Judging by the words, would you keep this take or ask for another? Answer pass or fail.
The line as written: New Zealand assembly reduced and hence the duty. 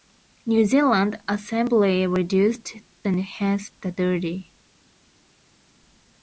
pass